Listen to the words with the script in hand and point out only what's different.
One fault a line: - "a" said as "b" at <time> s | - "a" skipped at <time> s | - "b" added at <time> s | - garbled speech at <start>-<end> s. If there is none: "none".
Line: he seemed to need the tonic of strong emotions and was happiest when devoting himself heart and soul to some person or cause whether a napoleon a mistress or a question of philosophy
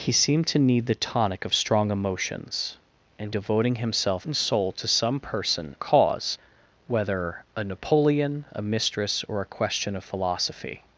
- "was happiest when" skipped at 3.4 s
- "heart" skipped at 4.2 s
- "or" skipped at 5.7 s